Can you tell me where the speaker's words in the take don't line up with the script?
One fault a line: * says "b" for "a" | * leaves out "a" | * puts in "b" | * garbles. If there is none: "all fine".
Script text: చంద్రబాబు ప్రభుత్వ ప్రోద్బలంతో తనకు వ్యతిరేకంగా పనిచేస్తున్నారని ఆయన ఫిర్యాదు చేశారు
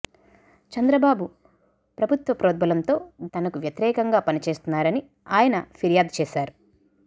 all fine